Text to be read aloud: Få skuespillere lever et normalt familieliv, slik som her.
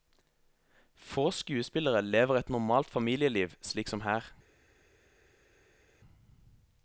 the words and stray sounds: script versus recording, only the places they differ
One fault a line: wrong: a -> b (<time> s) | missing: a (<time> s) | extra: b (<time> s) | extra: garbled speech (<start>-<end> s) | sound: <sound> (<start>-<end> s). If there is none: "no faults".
no faults